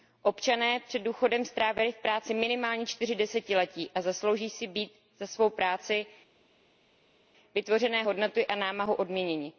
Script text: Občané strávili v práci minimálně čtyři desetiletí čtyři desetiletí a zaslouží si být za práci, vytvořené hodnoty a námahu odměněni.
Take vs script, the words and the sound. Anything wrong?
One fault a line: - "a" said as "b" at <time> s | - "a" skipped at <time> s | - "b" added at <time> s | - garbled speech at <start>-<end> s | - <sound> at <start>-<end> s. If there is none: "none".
- "před důchodem" added at 0.8 s
- "čtyři desetiletí" skipped at 3.9 s
- "svou" added at 5.3 s